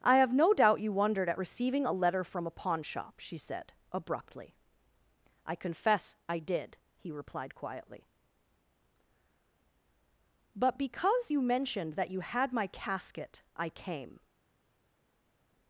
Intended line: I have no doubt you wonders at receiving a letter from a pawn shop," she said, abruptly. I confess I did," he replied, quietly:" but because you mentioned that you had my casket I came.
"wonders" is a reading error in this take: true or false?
true